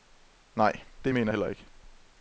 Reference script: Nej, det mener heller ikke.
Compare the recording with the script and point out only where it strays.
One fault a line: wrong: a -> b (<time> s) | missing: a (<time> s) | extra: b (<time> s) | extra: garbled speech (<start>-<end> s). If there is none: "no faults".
no faults